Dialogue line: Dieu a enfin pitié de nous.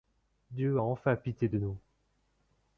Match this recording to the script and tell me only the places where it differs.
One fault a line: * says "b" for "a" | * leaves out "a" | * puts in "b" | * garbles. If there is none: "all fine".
all fine